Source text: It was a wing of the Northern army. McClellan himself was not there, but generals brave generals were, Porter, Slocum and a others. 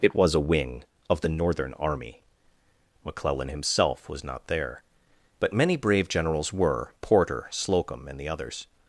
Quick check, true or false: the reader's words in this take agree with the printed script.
false